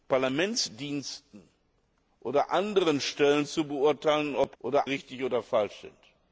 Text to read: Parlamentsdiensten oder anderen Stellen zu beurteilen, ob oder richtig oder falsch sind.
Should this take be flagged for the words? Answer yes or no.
no